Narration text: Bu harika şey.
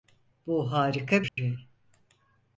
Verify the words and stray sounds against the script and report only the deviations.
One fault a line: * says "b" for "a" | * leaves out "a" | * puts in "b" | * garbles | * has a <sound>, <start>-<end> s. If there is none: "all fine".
* has a dropout, 1.3-1.4 s